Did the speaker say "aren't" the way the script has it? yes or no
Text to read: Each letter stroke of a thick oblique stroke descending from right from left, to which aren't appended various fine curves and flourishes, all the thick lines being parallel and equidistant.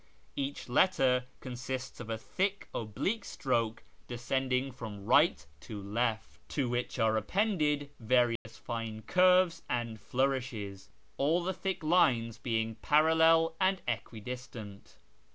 no